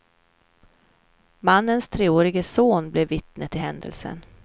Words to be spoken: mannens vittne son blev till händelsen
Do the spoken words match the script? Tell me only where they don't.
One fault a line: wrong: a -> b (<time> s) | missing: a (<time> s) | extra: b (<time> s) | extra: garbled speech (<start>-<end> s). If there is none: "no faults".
wrong: vittne -> treårige (1.9 s)
extra: vittne (3.1 s)